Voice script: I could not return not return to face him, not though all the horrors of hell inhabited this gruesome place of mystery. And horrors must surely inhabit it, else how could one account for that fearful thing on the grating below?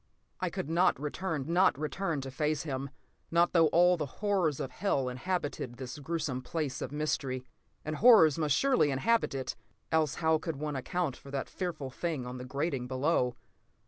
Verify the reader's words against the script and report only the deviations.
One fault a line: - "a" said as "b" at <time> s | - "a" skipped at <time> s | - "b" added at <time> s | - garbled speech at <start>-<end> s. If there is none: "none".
none